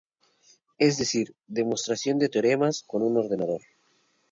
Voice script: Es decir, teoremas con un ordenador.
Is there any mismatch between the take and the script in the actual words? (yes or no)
yes